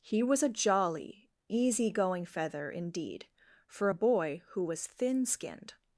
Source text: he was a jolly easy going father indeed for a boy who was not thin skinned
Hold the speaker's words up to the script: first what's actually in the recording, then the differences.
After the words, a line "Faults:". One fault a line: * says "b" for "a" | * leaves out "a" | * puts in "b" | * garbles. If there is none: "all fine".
he was a jolly easy going feather indeed for a boy who was thin skinned
Faults:
* says "feather" for "father"
* leaves out "not"